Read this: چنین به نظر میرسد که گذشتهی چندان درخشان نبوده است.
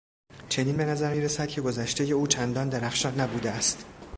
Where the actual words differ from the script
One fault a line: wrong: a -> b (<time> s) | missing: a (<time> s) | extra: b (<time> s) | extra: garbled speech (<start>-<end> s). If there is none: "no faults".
extra: او (2.1 s)